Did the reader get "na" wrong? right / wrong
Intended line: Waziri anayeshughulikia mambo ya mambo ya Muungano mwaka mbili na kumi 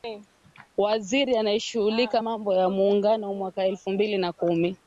right